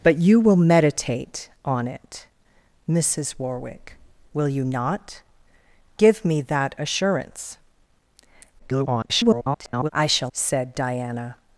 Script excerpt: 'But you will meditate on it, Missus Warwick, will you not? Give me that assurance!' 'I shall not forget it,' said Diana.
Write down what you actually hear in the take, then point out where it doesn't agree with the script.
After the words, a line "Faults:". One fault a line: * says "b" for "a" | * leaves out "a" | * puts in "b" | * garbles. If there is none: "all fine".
'But you will meditate on it, Missus Warwick, will you not? Give me that assurance!' [garbled] 'I shall,' said Diana.
Faults:
* garbles
* leaves out "not forget it"